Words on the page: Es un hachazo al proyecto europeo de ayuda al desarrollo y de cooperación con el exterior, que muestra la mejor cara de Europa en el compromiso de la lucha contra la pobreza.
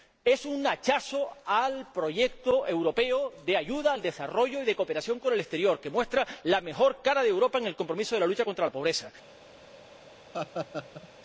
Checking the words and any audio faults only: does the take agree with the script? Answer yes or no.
no